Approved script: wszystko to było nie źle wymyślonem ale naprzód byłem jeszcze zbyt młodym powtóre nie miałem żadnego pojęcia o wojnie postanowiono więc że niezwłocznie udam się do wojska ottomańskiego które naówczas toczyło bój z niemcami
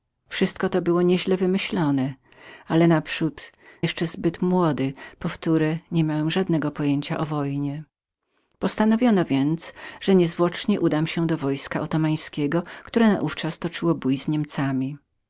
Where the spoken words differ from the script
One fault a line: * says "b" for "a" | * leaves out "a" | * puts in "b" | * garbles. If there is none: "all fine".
* leaves out "byłem"